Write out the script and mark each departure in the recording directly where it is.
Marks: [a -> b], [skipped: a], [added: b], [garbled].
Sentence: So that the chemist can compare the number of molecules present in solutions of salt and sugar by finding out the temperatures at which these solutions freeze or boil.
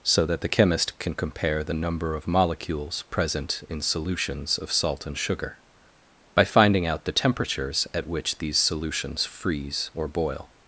So that the chemist can compare the number of molecules present in solutions of salt and sugar by finding out the temperatures at which these solutions freeze or boil.